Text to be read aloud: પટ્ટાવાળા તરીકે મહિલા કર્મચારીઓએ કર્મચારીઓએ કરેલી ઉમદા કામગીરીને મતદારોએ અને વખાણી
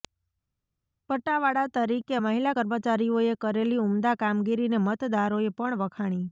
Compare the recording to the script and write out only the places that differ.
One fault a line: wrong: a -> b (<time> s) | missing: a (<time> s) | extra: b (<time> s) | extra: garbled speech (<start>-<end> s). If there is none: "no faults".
missing: કર્મચારીઓએ (3.4 s)
wrong: અને -> પણ (5.5 s)